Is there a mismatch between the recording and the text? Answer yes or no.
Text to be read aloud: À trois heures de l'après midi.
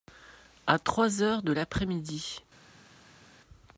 no